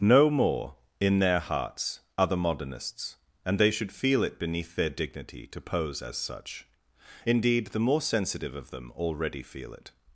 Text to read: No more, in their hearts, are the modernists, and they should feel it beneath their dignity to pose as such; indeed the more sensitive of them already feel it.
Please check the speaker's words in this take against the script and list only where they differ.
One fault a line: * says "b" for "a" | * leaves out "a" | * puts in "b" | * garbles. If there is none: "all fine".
all fine